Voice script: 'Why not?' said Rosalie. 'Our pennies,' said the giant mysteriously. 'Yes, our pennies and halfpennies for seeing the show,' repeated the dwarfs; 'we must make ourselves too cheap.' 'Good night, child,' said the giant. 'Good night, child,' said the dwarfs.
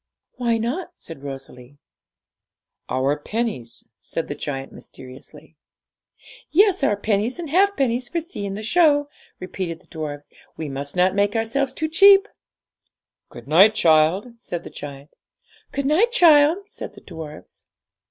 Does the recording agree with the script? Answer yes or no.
no